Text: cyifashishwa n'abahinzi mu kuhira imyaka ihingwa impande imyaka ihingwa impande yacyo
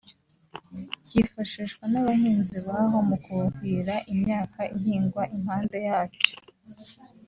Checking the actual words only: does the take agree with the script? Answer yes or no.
no